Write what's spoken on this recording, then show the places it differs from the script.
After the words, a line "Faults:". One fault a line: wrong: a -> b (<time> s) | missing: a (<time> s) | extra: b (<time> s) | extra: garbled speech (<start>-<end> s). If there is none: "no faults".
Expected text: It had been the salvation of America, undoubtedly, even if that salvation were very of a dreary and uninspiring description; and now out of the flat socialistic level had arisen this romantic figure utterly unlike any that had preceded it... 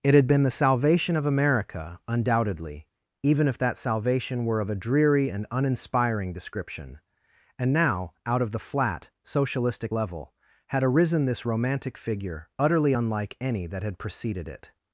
It had been the salvation of America, undoubtedly, even if that salvation were of a dreary and uninspiring description; and now out of the flat socialistic level had arisen this romantic figure utterly unlike any that had preceded it...
Faults:
missing: very (4.6 s)